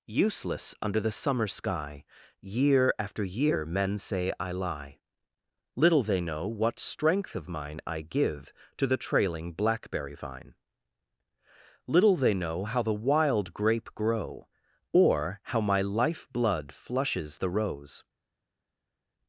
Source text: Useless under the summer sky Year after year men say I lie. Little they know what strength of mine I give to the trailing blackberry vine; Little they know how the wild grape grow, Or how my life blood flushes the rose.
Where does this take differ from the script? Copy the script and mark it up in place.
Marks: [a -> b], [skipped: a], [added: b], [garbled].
Useless under the summer sky Year after year men say I lie. Little they know what strength of mine I give to the trailing blackberry vine; Little they know how the wild grape grow, Or how my life blood flushes the rose.